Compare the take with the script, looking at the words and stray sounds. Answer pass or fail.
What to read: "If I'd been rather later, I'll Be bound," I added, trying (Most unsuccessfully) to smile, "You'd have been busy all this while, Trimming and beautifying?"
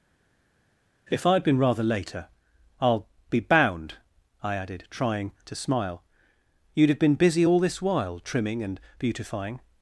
fail